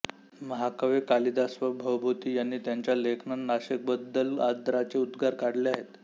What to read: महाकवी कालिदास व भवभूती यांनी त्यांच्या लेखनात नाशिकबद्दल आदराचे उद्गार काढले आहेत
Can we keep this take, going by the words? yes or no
yes